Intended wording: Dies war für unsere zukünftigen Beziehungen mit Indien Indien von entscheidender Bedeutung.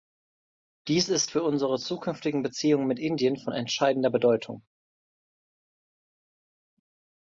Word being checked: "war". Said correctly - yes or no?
no